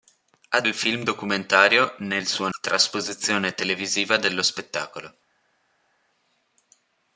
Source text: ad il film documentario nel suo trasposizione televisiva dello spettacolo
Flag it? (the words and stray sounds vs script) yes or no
no